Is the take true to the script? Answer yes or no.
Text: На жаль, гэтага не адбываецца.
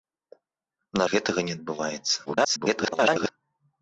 no